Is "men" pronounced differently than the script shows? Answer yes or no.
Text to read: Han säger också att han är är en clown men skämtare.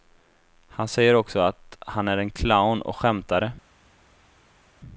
yes